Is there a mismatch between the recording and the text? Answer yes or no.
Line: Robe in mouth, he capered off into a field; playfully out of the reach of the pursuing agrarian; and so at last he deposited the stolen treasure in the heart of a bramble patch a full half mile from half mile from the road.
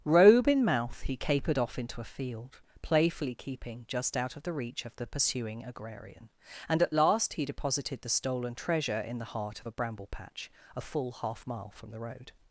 yes